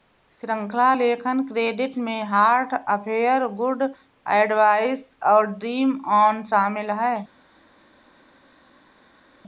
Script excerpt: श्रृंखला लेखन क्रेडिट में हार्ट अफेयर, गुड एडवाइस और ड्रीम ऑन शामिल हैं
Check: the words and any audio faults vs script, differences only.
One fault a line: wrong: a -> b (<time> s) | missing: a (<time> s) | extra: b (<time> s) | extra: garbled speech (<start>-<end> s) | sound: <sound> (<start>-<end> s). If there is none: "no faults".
no faults